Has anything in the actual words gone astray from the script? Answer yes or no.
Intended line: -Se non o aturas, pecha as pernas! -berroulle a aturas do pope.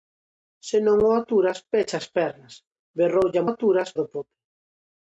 no